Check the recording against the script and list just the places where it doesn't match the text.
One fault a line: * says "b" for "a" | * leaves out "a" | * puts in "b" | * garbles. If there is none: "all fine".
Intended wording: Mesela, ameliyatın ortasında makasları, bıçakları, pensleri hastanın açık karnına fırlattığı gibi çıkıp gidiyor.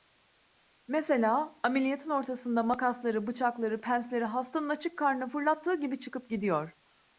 all fine